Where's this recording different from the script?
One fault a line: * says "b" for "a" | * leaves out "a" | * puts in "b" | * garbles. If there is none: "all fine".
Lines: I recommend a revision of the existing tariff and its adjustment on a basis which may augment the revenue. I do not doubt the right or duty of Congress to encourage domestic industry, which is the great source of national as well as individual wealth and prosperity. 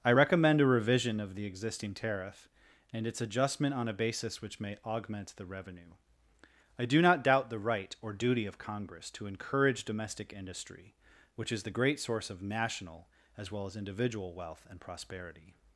all fine